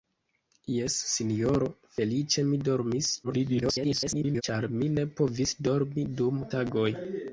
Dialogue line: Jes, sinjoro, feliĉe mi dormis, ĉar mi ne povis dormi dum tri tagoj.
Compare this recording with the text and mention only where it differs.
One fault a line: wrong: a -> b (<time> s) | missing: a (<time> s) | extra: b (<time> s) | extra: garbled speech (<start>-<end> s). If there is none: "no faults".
extra: garbled speech (3.2-4.4 s)
missing: tri (6.5 s)